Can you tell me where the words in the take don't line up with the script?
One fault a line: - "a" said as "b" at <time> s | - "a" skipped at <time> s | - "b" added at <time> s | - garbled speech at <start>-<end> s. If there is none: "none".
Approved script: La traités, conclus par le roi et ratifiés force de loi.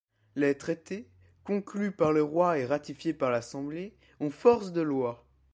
- "La" said as "Les" at 0.3 s
- "par l'Assemblée ont" added at 3.1 s